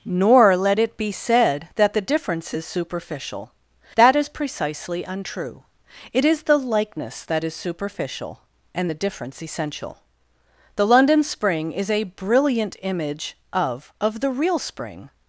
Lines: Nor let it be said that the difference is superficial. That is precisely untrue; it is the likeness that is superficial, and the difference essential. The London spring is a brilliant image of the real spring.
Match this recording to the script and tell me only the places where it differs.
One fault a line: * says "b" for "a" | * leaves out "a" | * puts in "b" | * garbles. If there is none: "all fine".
* puts in "of"